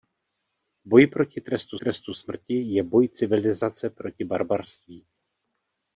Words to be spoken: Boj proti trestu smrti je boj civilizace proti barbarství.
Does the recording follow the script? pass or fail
fail